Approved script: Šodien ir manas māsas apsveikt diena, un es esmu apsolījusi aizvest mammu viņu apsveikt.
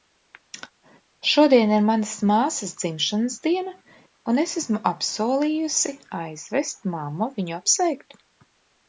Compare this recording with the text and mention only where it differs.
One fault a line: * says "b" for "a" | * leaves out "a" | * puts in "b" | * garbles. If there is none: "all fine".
* says "dzimšanas" for "apsveikt"